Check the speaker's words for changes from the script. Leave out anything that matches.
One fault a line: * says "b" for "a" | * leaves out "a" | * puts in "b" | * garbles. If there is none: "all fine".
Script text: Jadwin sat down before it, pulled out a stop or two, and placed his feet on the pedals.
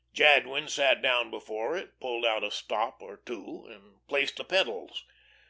* leaves out "his feet on"